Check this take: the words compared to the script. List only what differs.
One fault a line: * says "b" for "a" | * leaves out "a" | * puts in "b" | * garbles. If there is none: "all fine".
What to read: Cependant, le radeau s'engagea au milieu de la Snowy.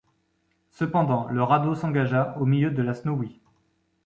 all fine